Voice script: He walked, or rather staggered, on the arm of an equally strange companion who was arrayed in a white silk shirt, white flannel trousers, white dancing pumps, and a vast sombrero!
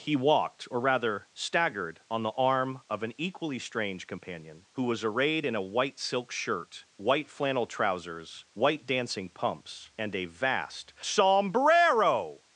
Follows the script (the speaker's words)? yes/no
yes